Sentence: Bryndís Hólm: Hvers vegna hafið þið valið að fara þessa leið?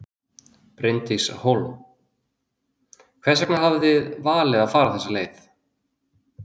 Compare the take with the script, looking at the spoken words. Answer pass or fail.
pass